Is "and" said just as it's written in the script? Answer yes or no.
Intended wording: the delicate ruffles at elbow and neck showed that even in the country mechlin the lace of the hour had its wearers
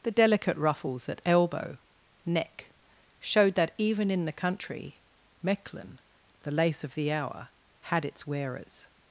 no